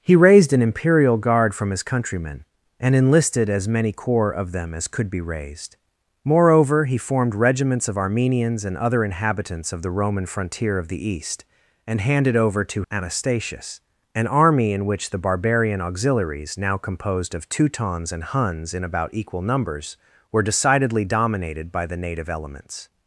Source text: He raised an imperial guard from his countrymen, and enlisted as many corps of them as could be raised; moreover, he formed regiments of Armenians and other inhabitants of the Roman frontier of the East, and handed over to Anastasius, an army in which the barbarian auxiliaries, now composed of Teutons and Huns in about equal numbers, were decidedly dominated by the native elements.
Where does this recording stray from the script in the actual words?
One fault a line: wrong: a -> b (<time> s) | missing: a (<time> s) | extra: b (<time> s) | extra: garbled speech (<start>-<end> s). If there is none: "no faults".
no faults